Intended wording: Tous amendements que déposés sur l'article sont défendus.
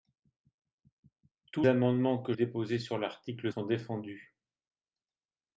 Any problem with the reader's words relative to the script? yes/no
no